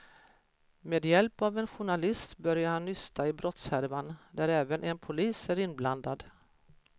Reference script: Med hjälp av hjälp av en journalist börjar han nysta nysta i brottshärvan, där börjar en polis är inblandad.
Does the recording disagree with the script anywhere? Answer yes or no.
yes